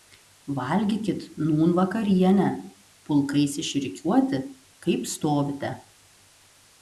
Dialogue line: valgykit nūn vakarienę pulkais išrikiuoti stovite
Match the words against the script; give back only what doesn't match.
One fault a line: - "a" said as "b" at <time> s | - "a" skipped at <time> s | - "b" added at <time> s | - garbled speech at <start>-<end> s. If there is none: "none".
- "kaip" added at 4.9 s